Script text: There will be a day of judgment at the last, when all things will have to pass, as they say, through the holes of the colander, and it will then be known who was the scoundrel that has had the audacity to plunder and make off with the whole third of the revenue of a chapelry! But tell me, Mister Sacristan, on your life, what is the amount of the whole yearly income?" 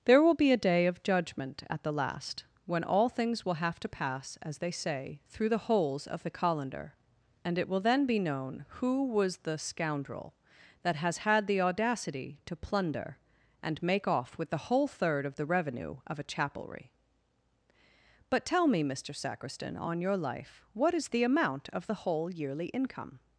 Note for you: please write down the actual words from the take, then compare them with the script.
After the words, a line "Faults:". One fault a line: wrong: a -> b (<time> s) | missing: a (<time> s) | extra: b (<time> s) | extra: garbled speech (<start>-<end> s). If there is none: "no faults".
There will be a day of judgment at the last, when all things will have to pass, as they say, through the holes of the colander, and it will then be known who was the scoundrel that has had the audacity to plunder and make off with the whole third of the revenue of a chapelry! But tell me, Mister Sacristan, on your life, what is the amount of the whole yearly income?"
Faults:
no faults